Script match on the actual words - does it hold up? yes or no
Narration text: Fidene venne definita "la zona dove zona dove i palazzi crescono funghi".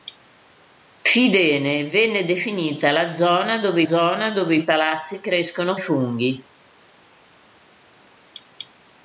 yes